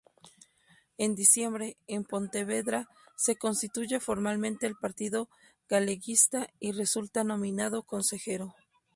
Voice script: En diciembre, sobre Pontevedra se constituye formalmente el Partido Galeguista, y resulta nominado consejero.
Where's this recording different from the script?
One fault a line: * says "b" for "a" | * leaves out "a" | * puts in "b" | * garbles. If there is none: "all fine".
* says "en" for "sobre"